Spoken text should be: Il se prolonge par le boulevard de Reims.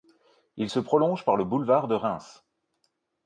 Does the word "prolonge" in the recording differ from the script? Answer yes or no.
no